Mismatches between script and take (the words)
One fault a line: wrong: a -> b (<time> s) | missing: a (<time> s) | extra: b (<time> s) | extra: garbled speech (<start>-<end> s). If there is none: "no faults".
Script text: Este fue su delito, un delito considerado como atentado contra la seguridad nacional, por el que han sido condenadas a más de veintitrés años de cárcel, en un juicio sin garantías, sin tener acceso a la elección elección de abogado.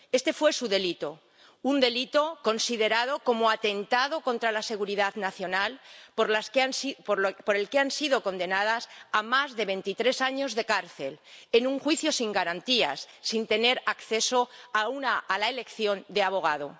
missing: elección (16.0 s)